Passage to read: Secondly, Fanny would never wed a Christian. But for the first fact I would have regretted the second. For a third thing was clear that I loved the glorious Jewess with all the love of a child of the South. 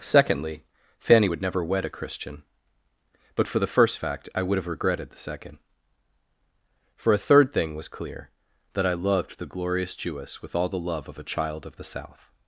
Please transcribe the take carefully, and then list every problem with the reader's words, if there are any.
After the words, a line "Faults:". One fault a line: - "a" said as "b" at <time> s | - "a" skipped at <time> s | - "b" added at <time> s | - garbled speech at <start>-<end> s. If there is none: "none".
Secondly, Fanny would never wed a Christian. But for the first fact I would have regretted the second. For a third thing was clear that I loved the glorious Jewess with all the love of a child of the South.
Faults:
none